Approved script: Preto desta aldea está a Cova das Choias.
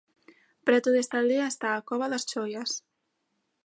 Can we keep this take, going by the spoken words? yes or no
yes